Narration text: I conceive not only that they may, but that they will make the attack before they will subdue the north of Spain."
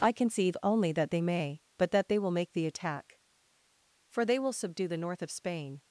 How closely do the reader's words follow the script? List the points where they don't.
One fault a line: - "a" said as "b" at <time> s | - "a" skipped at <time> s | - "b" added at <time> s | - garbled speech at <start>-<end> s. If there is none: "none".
- "not" skipped at 0.6 s
- "before" said as "for" at 4.1 s